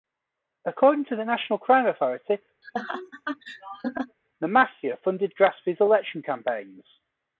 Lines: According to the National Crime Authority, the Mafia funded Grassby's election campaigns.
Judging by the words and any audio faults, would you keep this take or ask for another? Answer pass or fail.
fail